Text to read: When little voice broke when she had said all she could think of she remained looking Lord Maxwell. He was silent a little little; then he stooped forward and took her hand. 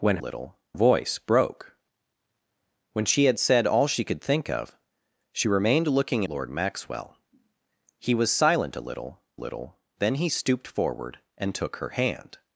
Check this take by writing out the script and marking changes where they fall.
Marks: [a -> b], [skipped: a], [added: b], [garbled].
When little voice broke when she had said all she could think of she remained looking Lord Maxwell. He was silent a little little; then he stooped forward and took her hand.